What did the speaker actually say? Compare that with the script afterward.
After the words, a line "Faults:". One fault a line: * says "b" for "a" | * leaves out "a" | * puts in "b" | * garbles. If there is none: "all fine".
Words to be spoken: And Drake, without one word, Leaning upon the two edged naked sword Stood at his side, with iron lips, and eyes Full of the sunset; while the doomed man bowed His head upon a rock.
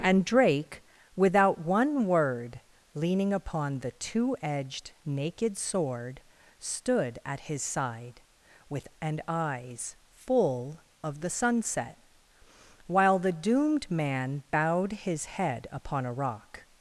And Drake, without one word, Leaning upon the two edged naked sword Stood at his side, with and eyes Full of the sunset; while the doomed man bowed His head upon a rock.
Faults:
* leaves out "iron lips"